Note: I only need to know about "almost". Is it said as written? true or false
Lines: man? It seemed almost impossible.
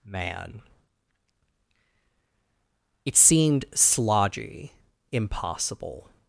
false